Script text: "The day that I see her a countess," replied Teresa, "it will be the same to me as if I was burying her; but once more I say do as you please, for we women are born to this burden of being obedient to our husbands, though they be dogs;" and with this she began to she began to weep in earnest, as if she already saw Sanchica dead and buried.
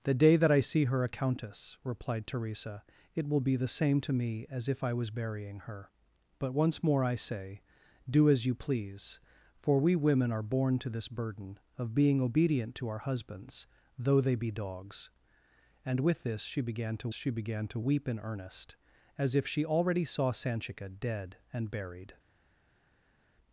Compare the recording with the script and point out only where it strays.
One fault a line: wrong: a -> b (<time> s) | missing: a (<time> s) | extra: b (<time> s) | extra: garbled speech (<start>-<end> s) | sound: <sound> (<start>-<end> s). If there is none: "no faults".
no faults